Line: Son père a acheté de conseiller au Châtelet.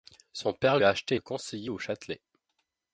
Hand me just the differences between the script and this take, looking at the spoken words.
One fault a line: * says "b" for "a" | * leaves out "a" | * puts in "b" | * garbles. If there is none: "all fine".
all fine